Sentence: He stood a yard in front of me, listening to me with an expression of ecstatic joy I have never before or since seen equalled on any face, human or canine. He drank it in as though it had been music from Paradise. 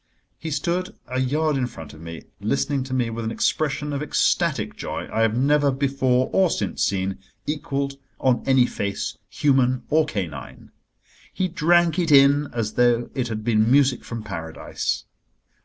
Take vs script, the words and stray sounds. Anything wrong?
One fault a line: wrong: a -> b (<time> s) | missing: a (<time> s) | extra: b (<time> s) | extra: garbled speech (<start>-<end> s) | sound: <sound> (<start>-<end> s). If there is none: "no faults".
no faults